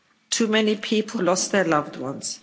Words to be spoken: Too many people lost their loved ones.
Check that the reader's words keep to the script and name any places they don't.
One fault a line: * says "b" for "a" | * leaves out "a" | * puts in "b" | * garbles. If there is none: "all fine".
all fine